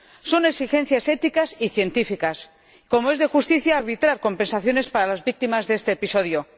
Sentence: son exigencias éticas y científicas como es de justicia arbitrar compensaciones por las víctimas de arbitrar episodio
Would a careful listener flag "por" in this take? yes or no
yes